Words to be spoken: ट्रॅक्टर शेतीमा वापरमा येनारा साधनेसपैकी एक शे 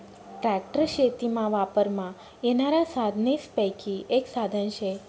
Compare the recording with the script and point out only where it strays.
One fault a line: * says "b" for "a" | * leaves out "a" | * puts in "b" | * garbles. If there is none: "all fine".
* puts in "साधन"